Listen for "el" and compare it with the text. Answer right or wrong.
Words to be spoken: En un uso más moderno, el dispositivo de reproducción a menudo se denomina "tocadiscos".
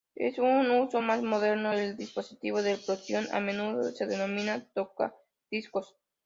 right